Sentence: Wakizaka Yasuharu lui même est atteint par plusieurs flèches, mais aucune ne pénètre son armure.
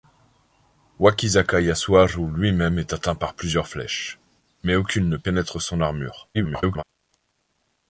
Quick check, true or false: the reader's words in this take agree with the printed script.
false